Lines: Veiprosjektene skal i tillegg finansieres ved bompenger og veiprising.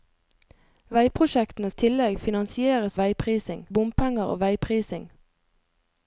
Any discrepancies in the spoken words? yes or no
yes